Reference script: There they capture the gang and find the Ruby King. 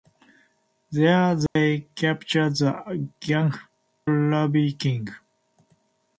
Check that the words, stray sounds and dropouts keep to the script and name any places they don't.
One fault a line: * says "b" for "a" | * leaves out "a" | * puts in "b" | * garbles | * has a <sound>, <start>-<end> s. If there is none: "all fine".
* has a dropout, 1.5-1.6 s
* leaves out "and find the"